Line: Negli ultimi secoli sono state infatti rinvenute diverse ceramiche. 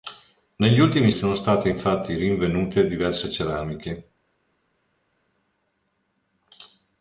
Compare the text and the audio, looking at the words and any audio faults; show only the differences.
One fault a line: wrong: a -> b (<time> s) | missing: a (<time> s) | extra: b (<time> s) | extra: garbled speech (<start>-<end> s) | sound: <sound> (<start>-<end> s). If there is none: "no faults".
missing: secoli (1.1 s)